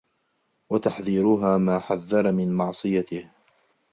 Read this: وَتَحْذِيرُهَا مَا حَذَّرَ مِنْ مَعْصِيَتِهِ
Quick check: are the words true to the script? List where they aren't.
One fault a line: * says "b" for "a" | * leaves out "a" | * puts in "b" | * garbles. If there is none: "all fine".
all fine